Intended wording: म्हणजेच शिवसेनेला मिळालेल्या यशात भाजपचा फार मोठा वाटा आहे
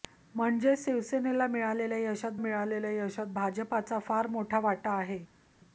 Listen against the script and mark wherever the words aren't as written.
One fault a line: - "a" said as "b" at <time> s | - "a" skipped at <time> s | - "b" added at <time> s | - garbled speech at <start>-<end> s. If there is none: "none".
- "मिळालेल्या यशात" added at 2.4 s